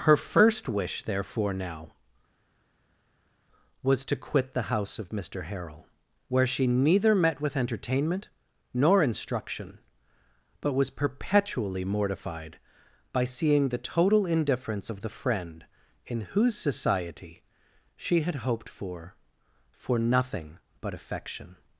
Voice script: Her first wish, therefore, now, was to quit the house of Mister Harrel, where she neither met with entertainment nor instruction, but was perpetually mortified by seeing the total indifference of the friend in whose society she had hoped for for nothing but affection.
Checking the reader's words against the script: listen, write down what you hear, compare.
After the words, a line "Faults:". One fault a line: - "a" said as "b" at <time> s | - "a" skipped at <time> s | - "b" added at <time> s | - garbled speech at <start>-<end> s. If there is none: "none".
Her first wish, therefore, now, was to quit the house of Mister Harrel, where she neither met with entertainment nor instruction, but was perpetually mortified by seeing the total indifference of the friend in whose society she had hoped for for nothing but affection.
Faults:
none